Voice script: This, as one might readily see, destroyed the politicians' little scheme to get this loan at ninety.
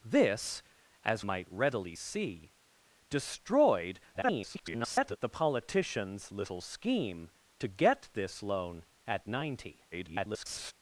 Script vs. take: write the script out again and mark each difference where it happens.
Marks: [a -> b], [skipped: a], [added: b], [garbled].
This, as [skipped: one] might readily see, destroyed [garbled] the politicians' little scheme to get this loan at ninety. [garbled]